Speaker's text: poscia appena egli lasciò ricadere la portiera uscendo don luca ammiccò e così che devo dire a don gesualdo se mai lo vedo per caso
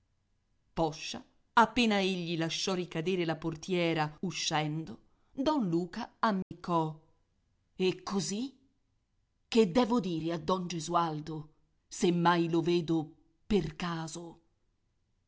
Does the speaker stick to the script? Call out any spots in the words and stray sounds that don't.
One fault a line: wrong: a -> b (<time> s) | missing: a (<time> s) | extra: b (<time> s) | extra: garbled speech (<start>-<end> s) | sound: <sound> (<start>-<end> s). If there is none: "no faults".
sound: dropout (6.4-6.5 s)